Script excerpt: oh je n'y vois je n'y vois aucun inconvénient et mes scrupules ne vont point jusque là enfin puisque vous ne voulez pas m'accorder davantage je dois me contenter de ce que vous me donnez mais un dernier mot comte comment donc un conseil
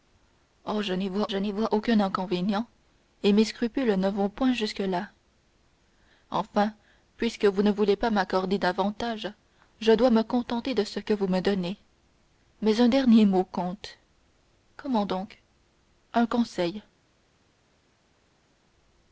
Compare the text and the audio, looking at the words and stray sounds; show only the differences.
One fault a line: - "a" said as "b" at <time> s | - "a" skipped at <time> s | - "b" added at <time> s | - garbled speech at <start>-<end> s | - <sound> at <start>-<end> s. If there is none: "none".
none